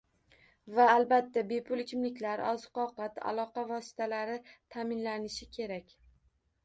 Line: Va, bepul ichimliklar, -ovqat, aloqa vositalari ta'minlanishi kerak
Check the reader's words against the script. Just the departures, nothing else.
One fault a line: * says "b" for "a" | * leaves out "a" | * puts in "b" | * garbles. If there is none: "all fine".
* puts in "albatta"
* puts in "oziq"